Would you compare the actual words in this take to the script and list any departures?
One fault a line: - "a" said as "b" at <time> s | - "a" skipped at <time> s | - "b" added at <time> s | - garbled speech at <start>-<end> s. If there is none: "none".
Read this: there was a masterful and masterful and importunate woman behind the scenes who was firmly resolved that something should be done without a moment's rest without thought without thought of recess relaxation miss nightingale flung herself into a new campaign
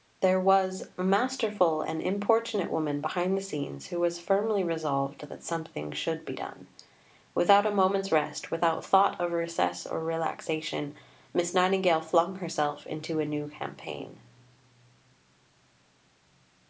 - "masterful and" skipped at 2.0 s
- "without thought" skipped at 9.2 s
- "or" added at 9.9 s